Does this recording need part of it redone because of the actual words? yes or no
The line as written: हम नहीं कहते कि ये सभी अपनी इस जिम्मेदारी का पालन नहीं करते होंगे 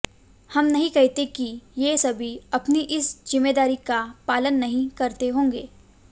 no